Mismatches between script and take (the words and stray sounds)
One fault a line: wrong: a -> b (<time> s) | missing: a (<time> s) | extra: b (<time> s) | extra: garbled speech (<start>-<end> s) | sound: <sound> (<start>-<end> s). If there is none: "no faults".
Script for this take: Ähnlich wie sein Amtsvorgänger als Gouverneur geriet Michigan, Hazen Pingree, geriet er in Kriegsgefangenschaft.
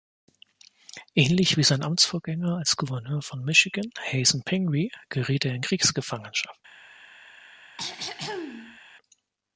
wrong: geriet -> von (3.2 s)
sound: throat clearing (7.8-8.8 s)